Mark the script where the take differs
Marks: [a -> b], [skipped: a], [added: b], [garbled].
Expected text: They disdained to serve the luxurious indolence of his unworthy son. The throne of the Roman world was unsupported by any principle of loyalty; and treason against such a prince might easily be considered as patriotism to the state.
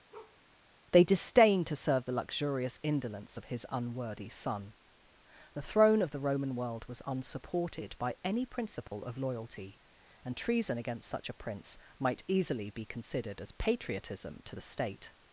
They disdained to serve the luxurious indolence of his unworthy son. The throne of the Roman world was unsupported by any principle of loyalty; and treason against such a prince might easily be considered as patriotism to the state.